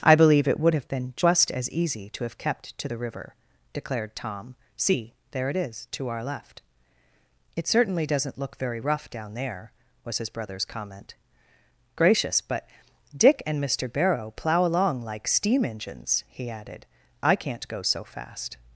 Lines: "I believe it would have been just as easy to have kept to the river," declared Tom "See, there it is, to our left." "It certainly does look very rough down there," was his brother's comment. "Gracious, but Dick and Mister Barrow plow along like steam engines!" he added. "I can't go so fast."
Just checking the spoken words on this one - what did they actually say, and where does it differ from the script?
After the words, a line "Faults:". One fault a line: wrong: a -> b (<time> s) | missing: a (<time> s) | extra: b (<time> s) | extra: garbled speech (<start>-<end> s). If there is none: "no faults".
"I believe it would have been just as easy to have kept to the river," declared Tom "See, there it is, to our left." "It certainly doesn't look very rough down there," was his brother's comment. "Gracious, but Dick and Mister Barrow plow along like steam engines!" he added. "I can't go so fast."
Faults:
wrong: does -> doesn't (8.1 s)